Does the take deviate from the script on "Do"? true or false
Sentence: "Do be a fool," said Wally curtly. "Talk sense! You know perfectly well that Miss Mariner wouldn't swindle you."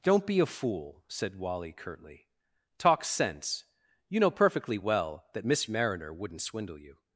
true